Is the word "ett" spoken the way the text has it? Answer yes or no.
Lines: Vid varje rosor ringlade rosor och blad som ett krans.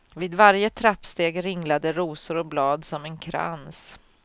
no